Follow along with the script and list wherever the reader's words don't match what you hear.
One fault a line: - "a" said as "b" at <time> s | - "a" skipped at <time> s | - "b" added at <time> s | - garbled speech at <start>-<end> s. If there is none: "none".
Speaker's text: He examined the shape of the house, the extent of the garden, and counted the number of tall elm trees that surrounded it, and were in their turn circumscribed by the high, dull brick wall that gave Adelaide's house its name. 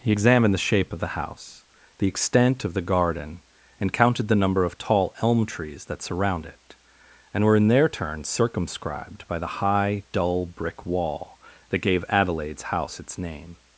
- "surrounded" said as "surround" at 6.0 s